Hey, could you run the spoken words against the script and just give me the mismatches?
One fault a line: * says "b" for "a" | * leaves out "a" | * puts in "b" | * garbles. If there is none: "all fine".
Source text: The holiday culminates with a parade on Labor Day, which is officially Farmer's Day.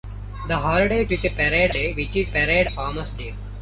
* leaves out "culminates"
* leaves out "on Labor"
* says "parade" for "officially"